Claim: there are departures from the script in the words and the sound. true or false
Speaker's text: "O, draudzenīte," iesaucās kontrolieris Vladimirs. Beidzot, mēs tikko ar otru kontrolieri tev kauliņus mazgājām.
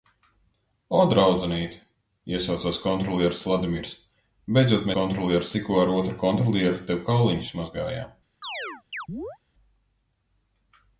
true